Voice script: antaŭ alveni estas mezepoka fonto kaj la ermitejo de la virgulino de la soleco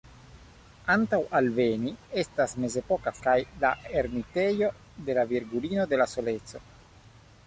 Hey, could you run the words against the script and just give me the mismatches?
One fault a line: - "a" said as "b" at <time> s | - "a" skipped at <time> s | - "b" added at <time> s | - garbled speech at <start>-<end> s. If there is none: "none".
- "fonto" skipped at 3.1 s